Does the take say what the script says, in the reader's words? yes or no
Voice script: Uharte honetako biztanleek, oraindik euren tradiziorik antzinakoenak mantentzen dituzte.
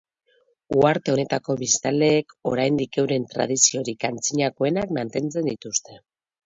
yes